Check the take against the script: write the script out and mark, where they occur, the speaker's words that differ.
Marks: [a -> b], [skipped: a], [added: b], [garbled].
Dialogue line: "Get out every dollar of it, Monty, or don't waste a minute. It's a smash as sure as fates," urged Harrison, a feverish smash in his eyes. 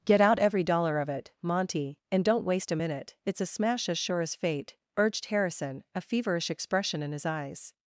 "Get out every dollar of it, Monty, [or -> and] don't waste a minute. It's a smash as sure as [fates," -> fate] urged Harrison, a feverish [smash -> expression] in his eyes.